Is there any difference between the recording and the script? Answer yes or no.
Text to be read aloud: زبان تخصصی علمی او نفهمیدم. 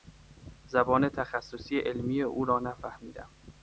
yes